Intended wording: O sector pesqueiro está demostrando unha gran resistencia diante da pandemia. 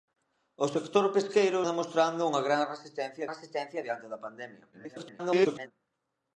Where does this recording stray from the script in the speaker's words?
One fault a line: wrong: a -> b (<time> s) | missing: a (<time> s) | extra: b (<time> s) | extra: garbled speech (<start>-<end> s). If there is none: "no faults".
missing: está (1.6 s)
extra: resistencia (3.3 s)
extra: garbled speech (4.7-5.7 s)